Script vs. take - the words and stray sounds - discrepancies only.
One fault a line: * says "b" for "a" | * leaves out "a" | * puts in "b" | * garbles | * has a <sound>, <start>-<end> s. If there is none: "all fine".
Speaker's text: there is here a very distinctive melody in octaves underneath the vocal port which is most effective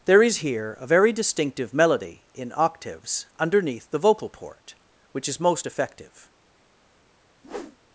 * has a whoosh, 7.4-7.8 s